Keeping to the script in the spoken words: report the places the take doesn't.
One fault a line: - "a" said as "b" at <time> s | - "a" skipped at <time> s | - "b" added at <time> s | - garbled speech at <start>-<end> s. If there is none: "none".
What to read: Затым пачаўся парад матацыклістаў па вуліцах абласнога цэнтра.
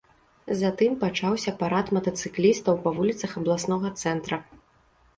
none